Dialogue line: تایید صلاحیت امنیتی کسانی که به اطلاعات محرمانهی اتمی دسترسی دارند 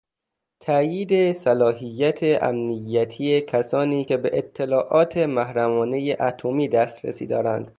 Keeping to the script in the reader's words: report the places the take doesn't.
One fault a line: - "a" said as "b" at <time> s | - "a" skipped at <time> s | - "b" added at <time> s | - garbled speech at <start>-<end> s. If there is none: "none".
none